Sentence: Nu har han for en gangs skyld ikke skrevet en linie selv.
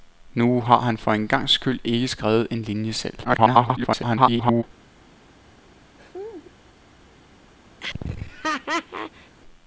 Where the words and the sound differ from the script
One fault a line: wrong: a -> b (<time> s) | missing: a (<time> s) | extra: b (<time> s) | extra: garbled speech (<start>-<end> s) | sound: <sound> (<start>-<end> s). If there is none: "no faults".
extra: garbled speech (3.2-4.6 s)
sound: laugh (6.0-6.5 s)
sound: laugh (7.8-9.4 s)